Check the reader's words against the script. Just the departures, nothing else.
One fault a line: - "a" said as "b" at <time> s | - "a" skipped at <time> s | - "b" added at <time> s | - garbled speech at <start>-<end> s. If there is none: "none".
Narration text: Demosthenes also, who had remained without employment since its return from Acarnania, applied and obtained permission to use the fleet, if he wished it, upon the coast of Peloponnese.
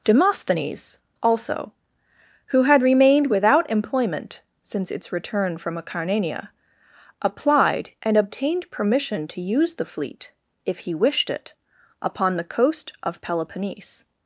none